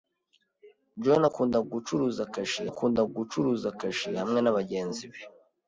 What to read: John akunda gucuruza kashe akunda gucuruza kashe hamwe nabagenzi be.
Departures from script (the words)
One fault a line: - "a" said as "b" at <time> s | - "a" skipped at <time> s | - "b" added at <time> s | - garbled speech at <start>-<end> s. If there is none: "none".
none